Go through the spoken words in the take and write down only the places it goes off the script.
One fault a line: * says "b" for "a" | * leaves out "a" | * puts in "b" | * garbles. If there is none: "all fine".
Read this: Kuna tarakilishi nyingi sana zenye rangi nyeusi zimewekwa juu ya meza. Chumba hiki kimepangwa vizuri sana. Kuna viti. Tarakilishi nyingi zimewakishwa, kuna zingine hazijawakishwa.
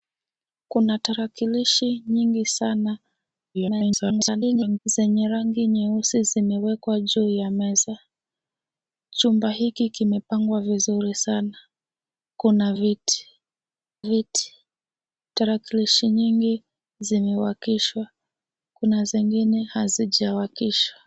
* garbles
* puts in "viti"